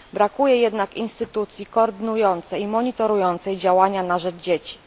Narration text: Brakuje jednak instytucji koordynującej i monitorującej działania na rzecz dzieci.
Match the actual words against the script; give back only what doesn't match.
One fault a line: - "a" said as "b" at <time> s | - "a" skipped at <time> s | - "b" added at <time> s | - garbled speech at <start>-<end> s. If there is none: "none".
none